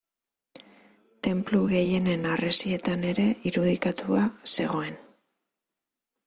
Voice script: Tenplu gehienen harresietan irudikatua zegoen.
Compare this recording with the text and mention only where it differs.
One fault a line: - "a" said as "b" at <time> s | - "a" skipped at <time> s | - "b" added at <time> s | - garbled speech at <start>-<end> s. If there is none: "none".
- "ere" added at 3.1 s